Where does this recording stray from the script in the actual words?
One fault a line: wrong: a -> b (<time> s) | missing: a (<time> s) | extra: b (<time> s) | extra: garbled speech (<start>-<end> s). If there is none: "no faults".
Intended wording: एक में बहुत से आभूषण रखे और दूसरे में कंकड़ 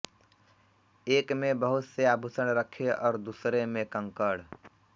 no faults